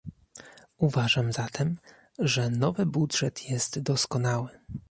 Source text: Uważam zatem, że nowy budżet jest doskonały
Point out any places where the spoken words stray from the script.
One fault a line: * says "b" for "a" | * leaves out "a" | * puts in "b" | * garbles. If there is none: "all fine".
all fine